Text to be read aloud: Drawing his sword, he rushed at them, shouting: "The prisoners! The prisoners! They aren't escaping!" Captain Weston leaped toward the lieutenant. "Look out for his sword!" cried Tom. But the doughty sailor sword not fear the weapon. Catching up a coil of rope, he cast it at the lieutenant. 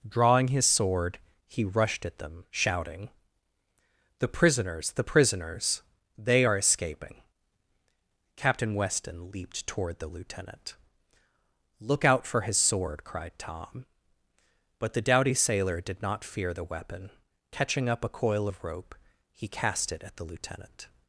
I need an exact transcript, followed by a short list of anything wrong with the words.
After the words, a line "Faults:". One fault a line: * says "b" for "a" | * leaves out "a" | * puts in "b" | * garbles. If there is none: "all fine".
Drawing his sword, he rushed at them, shouting: "The prisoners! The prisoners! They are escaping!" Captain Weston leaped toward the lieutenant. "Look out for his sword!" cried Tom. But the doughty sailor did not fear the weapon. Catching up a coil of rope, he cast it at the lieutenant.
Faults:
* says "are" for "aren't"
* says "did" for "sword"